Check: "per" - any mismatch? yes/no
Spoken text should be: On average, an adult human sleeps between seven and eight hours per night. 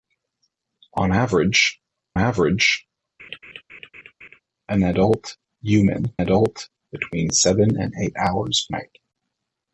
yes